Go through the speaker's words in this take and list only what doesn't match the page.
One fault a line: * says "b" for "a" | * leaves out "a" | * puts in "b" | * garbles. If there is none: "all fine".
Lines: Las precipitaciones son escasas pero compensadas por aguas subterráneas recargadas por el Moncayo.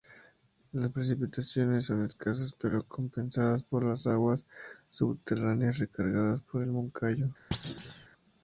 * puts in "las"